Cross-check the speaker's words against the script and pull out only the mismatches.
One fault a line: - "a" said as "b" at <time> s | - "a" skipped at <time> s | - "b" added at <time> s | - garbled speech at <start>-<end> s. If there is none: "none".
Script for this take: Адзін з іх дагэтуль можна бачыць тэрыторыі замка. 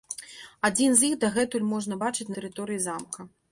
none